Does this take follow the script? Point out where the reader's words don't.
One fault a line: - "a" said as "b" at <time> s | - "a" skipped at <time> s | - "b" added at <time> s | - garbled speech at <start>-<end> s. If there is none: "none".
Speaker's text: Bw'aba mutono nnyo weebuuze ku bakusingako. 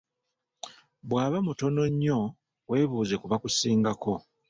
none